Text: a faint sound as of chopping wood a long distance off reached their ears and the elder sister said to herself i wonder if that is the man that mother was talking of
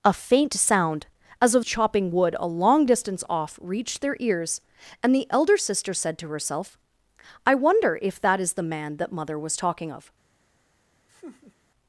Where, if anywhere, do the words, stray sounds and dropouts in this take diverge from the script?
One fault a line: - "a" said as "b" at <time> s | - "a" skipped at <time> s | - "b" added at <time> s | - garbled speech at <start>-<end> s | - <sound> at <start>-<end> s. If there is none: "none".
- laugh at 11.1-11.5 s